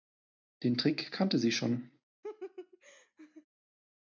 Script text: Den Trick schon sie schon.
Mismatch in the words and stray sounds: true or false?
true